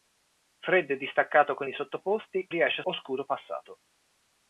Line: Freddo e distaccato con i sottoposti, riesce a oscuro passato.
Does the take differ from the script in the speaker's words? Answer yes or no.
no